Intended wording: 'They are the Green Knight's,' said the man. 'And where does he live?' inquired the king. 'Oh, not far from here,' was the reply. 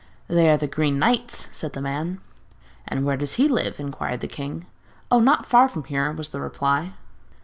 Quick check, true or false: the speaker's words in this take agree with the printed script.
true